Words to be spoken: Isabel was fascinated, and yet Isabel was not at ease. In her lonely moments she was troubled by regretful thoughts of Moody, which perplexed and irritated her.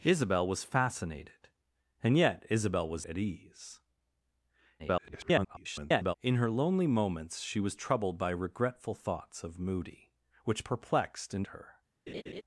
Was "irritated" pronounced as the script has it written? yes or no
no